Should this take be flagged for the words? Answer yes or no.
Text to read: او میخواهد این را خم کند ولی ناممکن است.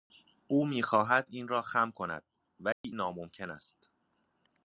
no